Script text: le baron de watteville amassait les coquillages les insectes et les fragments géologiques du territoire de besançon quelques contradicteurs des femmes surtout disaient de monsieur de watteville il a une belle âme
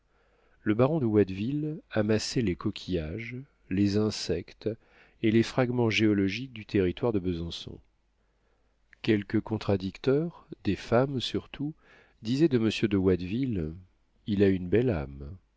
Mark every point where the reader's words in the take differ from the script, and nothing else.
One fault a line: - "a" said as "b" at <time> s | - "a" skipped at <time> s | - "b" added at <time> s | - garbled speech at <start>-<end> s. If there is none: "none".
none